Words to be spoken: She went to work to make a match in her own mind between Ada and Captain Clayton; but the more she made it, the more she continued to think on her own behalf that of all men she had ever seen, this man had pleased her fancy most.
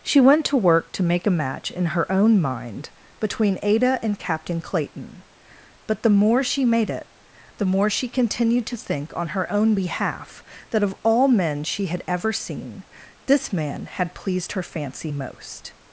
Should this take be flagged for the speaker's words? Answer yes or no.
no